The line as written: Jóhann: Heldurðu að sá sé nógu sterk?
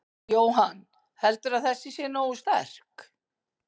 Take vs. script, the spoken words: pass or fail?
fail